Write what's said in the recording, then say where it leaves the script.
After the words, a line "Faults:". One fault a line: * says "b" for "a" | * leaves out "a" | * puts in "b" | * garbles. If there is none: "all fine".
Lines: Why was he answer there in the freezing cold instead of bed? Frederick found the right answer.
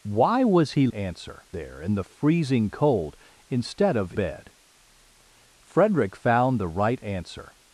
Why was he answer there in the freezing cold instead of bed? Frederick found the right answer.
Faults:
all fine